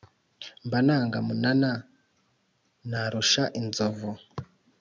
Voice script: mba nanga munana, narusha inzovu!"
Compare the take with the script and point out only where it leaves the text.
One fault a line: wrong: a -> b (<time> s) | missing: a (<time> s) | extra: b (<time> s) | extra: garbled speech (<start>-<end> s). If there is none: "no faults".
no faults